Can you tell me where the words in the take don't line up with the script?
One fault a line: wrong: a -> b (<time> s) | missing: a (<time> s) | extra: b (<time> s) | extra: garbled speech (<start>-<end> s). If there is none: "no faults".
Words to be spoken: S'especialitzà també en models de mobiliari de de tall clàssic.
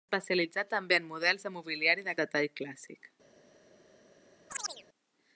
no faults